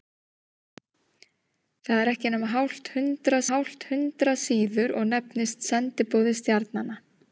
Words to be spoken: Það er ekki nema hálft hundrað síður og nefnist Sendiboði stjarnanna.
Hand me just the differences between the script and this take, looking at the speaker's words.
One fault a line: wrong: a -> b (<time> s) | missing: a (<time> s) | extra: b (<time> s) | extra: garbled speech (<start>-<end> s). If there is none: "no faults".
extra: hálft hundrað (3.5 s)